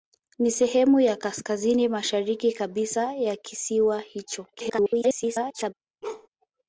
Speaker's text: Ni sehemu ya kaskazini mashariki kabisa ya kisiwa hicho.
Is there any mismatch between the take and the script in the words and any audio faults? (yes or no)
yes